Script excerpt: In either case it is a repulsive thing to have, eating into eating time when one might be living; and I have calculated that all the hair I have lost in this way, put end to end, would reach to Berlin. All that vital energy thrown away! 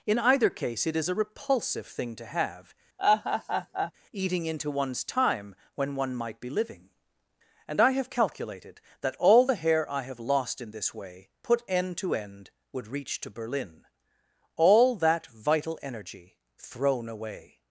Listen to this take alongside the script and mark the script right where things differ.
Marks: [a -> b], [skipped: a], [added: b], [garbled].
In either case it is a repulsive thing to have, eating into [eating -> one's] time when one might be living; and I have calculated that all the hair I have lost in this way, put end to end, would reach to Berlin. All that vital energy thrown away!